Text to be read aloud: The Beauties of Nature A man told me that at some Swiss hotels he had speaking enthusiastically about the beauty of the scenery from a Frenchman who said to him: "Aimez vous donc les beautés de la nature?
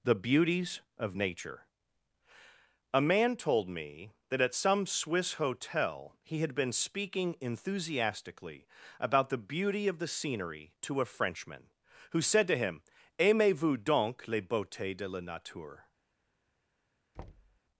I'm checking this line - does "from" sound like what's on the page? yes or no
no